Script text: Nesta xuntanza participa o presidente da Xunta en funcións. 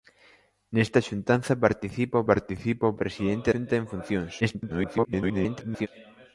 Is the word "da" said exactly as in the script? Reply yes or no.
no